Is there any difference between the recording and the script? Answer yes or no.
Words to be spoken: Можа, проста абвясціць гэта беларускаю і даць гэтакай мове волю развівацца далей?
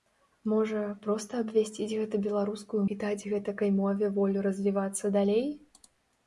no